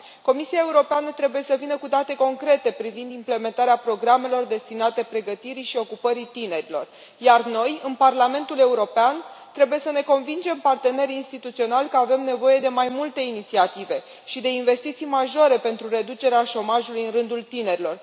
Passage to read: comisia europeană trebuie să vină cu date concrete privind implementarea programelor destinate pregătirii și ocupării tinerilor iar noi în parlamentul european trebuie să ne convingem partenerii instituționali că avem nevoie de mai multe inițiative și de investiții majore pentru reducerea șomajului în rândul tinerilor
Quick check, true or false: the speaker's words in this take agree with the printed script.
true